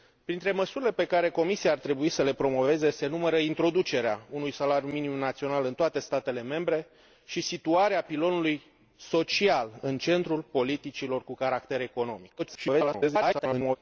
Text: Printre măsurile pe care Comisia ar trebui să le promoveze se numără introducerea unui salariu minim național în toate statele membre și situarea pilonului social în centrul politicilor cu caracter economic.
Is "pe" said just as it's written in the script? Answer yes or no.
yes